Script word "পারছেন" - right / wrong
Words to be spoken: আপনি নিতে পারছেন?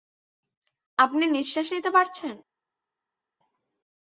right